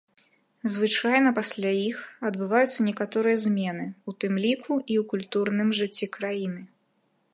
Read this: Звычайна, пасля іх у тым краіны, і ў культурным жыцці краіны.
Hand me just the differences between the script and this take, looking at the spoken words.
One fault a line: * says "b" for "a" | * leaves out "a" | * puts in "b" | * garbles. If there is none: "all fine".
* puts in "адбываюцца некаторыя змены"
* says "ліку" for "краіны"